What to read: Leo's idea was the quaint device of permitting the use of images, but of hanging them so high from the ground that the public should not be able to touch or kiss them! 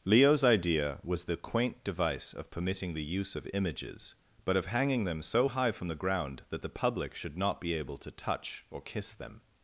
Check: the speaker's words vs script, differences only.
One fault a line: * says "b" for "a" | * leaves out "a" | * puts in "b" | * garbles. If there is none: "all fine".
all fine